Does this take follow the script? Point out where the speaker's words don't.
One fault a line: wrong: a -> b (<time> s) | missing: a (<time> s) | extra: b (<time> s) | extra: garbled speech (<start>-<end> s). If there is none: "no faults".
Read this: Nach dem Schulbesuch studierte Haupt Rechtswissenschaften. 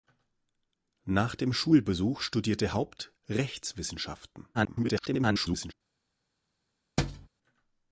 extra: garbled speech (4.5-5.7 s)